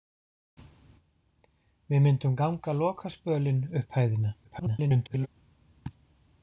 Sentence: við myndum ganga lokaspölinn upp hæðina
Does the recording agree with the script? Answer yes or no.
no